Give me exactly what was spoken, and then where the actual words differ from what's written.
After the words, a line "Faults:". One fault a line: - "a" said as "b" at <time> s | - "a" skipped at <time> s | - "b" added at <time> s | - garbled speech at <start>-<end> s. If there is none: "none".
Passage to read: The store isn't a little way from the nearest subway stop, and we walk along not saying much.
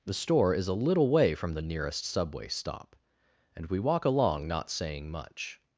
The store is a little way from the nearest subway stop, and we walk along not saying much.
Faults:
- "isn't" said as "is" at 0.5 s